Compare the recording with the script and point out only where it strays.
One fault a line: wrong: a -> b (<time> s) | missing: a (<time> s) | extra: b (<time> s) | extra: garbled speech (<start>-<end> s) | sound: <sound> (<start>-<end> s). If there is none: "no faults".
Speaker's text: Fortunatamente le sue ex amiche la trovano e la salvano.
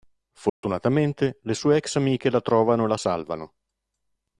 sound: dropout (0.5-0.6 s)